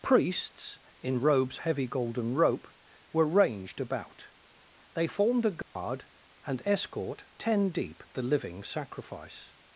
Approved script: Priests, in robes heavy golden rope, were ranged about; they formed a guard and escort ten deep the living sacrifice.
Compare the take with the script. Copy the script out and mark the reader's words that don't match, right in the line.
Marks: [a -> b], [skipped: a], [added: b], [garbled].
Priests, in robes heavy golden rope, were ranged about; they formed a guard and escort ten deep the living sacrifice.